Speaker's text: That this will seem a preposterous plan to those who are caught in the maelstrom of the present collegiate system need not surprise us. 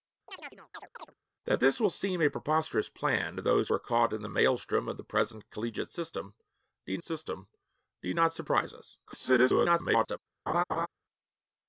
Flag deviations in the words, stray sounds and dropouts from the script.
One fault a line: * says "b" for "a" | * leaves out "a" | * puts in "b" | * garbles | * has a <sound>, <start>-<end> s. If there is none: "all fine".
* has a chirp, 0.3-1.1 s
* leaves out "who"
* puts in "system need"
* garbles
* has a laugh, 10.5-10.9 s